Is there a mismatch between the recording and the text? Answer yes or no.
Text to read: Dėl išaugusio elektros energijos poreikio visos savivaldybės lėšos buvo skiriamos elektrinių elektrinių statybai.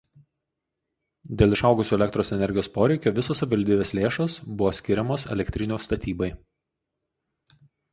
yes